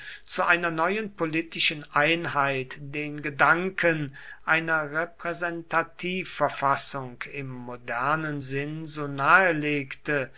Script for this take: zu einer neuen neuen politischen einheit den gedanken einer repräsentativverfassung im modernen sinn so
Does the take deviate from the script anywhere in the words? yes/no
yes